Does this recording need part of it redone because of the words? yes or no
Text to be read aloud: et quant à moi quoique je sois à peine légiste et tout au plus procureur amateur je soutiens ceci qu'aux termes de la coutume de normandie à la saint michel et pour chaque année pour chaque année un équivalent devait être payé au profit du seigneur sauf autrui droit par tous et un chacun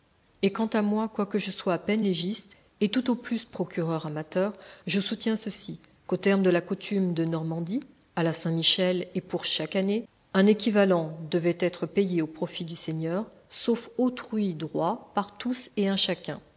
yes